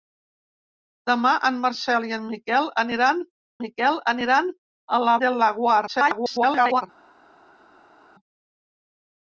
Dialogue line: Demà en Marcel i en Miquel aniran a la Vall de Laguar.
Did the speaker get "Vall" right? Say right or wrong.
wrong